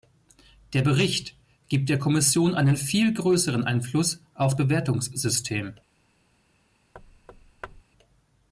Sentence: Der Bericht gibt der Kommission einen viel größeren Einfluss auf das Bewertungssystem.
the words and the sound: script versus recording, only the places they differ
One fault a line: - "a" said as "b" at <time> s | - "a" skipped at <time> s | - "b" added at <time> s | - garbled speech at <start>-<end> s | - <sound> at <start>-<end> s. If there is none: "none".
- "das" skipped at 4.5 s
- thud at 6.9-7.8 s